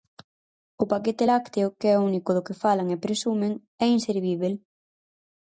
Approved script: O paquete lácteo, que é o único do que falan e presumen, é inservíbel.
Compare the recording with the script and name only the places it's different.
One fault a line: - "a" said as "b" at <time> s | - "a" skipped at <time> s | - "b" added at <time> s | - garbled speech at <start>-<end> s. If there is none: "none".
none